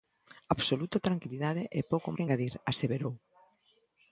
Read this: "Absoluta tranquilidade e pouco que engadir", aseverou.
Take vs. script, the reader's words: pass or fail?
pass